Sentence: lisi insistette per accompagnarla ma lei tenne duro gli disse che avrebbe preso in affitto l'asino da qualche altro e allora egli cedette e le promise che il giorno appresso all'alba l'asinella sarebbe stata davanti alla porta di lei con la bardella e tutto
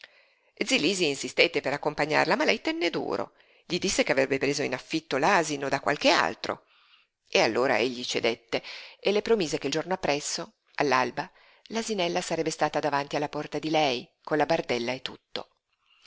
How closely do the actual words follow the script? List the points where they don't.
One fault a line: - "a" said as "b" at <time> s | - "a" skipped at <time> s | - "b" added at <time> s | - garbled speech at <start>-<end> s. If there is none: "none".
none